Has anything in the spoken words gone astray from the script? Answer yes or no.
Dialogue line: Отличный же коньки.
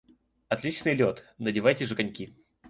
yes